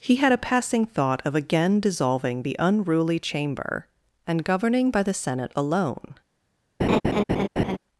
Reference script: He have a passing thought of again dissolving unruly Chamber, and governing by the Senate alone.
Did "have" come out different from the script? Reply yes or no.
yes